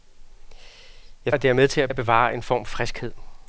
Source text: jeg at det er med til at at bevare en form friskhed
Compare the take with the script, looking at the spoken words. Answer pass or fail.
pass